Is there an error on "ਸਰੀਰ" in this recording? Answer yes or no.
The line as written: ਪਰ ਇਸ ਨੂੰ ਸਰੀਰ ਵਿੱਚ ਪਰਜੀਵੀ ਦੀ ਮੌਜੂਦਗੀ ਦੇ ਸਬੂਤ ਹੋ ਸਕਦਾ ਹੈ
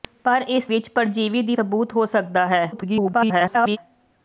yes